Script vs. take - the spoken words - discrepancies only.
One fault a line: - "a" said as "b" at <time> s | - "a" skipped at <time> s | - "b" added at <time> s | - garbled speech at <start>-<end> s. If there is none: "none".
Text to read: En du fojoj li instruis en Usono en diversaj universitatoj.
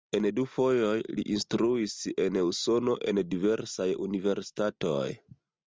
none